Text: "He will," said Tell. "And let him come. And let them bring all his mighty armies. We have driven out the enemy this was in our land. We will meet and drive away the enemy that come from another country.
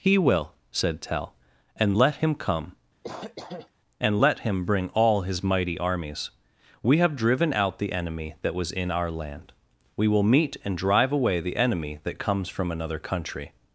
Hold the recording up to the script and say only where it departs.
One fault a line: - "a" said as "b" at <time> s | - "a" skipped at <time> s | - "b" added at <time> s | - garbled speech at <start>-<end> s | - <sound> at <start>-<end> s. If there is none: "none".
- cough at 3.0-3.7 s
- "them" said as "him" at 4.4 s
- "this" said as "that" at 8.4 s
- "come" said as "comes" at 12.2 s